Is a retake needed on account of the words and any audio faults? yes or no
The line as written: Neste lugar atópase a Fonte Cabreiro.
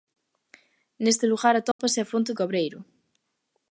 yes